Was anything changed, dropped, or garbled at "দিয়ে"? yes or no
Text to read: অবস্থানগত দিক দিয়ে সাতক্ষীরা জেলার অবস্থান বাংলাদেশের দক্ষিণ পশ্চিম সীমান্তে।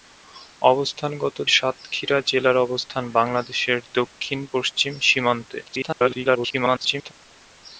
yes